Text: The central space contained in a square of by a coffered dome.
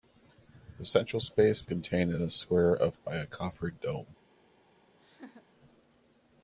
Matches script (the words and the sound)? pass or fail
fail